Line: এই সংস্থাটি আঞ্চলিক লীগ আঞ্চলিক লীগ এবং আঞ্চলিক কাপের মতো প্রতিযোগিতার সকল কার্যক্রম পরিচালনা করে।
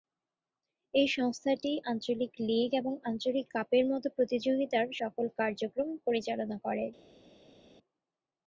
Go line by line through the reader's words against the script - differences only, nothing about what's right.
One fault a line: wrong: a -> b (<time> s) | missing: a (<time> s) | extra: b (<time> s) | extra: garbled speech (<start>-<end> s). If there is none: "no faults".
missing: আঞ্চলিক লীগ (2.7 s)